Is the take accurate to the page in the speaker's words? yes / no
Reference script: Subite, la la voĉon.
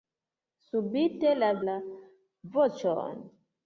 yes